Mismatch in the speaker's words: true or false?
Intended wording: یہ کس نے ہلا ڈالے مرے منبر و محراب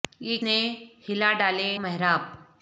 true